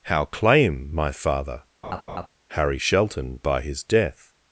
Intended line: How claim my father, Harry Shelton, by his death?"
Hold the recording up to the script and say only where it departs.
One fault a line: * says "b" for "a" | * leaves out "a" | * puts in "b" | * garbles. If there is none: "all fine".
all fine